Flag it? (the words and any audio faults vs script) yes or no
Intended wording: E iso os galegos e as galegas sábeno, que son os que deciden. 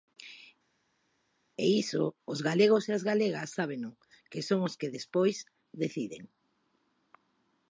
yes